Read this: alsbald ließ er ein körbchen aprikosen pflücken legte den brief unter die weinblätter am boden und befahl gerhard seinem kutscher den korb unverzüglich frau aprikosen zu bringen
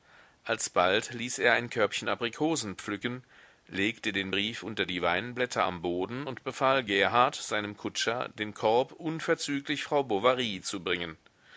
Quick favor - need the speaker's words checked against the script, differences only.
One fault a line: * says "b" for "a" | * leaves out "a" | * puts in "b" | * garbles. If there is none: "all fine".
* says "bovary" for "aprikosen"